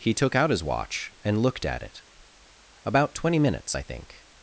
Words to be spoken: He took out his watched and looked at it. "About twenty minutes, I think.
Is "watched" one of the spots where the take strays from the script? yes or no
yes